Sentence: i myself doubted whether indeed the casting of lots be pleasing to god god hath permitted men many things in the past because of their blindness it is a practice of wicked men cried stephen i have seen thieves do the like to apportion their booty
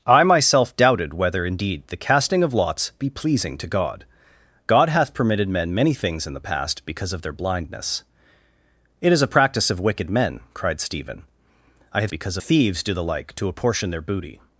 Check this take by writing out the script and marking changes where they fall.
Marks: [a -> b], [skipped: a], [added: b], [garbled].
i myself doubted whether indeed the casting of lots be pleasing to god god hath permitted men many things in the past because of their blindness it is a practice of wicked men cried stephen i have [seen -> because] thieves do the like to apportion their booty